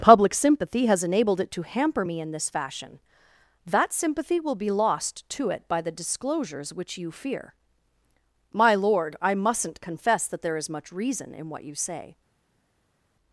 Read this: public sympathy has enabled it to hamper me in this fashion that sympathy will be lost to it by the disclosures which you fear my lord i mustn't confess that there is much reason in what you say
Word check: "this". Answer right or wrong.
right